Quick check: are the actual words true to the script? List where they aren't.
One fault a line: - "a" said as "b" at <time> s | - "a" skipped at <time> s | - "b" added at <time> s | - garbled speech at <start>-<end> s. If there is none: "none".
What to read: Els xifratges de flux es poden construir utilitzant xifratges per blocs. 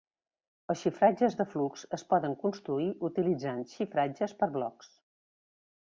none